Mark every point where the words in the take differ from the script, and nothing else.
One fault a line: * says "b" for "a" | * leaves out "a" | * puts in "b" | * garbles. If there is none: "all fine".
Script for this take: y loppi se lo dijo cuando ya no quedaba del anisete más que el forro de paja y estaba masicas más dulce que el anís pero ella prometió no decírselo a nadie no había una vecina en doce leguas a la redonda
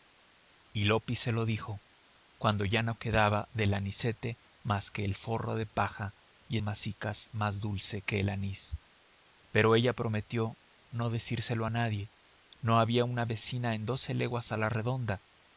* leaves out "estaba"